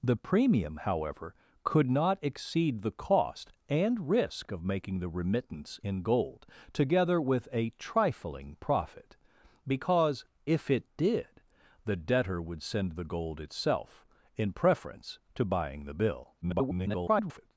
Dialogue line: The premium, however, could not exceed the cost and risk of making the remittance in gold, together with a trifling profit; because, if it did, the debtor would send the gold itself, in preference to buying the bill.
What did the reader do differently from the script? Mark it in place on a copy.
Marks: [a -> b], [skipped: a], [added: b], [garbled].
The premium, however, could not exceed the cost and risk of making the remittance in gold, together with a trifling profit; because, if it did, the debtor would send the gold itself, in preference to buying the bill. [garbled]